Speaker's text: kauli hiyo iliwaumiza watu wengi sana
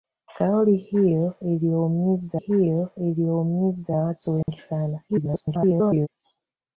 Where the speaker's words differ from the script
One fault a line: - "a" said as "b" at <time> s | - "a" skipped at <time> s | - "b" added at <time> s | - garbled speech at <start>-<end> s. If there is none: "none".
- "hiyo iliwaumiza" added at 2.3 s
- garbled speech at 5.1-6.1 s